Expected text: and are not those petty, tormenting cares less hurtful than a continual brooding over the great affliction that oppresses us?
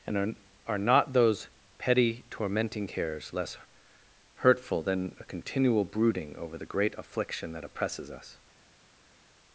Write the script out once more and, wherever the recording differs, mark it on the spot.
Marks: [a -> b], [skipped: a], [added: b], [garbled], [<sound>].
and are [added: are] not those petty, tormenting cares less hurtful than a continual brooding over the great affliction that oppresses us?